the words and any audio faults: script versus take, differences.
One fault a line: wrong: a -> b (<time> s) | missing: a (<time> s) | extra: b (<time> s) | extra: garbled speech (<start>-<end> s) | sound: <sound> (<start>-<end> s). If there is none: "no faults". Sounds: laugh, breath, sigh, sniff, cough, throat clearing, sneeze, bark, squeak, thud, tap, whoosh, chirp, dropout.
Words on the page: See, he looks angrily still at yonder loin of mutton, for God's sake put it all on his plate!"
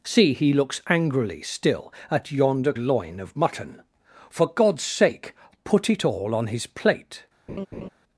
sound: laugh (7.5-7.9 s)